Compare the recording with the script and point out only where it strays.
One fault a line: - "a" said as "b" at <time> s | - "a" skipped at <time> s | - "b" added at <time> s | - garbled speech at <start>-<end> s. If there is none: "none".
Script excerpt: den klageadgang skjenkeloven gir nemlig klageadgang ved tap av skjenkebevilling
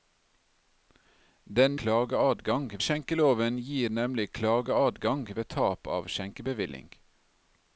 none